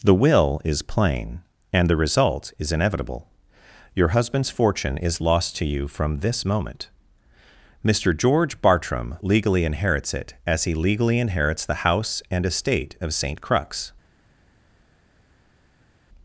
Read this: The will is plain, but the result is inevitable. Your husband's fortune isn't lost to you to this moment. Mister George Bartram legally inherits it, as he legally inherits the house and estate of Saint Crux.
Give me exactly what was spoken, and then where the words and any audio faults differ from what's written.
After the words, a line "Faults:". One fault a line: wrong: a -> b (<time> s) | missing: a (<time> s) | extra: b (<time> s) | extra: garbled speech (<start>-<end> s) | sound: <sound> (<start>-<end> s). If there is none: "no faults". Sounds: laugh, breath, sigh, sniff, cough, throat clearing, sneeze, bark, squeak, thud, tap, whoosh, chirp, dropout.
The will is plain, and the result is inevitable. Your husband's fortune is lost to you from this moment. Mister George Bartram legally inherits it, as he legally inherits the house and estate of Saint Crux.
Faults:
wrong: but -> and (1.7 s)
wrong: isn't -> is (5.0 s)
wrong: to -> from (5.9 s)